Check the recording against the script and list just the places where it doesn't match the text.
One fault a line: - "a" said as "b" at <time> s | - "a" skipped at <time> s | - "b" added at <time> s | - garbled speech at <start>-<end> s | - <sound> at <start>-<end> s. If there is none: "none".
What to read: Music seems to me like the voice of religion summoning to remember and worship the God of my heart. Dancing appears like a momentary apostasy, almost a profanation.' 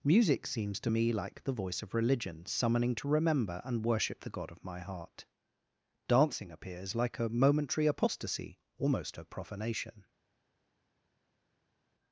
none